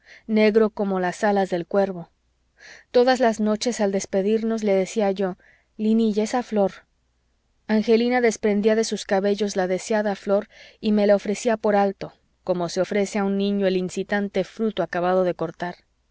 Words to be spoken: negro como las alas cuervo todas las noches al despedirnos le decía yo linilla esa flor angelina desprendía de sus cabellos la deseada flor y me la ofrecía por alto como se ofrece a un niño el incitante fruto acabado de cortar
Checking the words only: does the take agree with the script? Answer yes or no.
no